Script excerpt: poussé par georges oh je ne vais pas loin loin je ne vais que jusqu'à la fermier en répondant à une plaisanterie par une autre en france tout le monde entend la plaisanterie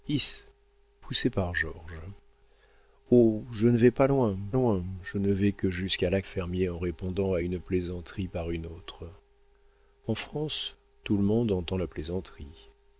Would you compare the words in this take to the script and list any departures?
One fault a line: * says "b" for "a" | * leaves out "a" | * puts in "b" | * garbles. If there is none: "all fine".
all fine